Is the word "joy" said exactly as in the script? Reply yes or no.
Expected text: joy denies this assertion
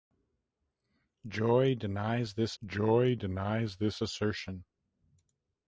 yes